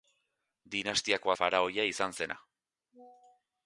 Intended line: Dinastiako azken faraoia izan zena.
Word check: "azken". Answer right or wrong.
wrong